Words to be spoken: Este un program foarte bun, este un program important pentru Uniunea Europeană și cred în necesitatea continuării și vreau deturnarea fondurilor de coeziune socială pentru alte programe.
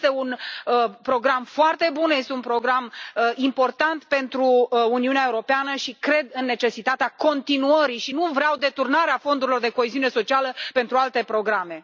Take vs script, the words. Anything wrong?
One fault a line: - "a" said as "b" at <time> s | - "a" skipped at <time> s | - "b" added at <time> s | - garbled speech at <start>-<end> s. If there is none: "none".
- "nu" added at 8.1 s